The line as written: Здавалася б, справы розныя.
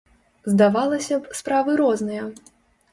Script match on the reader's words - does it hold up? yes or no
yes